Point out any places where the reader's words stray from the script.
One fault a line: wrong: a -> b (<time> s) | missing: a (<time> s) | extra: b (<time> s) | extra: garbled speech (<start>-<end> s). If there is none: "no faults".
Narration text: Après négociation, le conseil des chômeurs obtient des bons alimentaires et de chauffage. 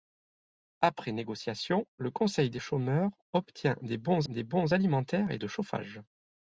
extra: des bons (4.3 s)